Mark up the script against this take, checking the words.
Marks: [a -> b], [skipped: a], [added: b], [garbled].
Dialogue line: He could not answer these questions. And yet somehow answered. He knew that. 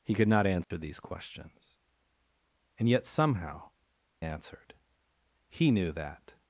He could not answer these questions. And yet somehow answered. He knew that.